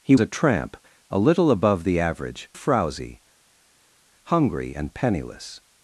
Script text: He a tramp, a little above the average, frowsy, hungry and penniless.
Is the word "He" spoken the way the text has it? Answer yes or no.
yes